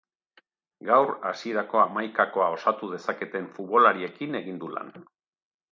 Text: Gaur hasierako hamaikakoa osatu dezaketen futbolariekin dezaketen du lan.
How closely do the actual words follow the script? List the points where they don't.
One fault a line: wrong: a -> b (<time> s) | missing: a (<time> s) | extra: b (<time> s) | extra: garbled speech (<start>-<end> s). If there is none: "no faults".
wrong: dezaketen -> egin (4.4 s)